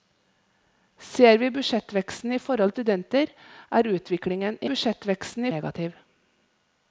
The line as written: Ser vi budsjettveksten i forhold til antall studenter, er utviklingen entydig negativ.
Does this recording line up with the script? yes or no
no